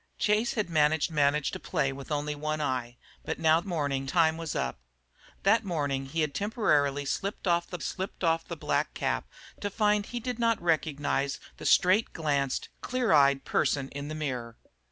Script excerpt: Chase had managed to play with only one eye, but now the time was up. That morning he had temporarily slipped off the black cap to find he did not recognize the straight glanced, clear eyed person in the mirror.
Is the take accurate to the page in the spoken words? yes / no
no